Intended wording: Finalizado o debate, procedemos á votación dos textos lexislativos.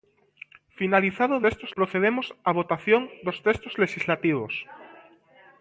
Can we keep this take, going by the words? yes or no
no